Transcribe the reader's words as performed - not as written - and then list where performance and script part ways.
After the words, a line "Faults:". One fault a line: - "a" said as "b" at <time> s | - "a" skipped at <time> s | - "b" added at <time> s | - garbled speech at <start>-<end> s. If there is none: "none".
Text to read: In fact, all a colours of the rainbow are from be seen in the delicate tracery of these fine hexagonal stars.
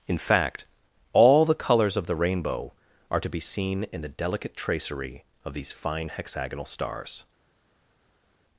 In fact, all the colours of the rainbow are to be seen in the delicate tracery of these fine hexagonal stars.
Faults:
- "a" said as "the" at 1.4 s
- "from" said as "to" at 3.2 s